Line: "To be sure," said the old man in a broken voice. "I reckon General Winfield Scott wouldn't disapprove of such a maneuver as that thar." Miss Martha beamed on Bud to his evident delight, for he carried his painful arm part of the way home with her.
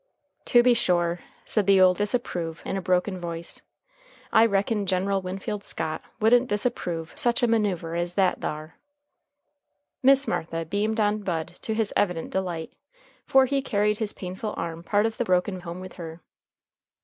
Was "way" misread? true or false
true